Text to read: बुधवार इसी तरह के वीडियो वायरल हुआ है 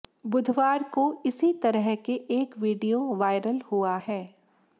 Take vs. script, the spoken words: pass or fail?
fail